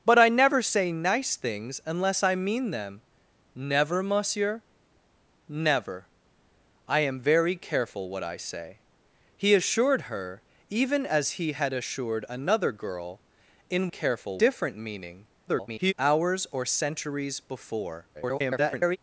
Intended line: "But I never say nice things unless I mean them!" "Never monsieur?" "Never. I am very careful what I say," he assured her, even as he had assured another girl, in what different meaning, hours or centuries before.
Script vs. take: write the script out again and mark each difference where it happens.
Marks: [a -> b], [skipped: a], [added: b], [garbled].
"But I never say nice things unless I mean them!" "Never monsieur?" "Never. I am very careful what I say," he assured her, even as he had assured another girl, in [what -> careful] different meaning, [garbled] hours or centuries before. [garbled]